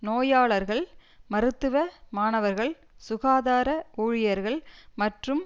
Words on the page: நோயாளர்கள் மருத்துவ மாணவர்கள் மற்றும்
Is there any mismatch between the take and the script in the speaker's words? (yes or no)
yes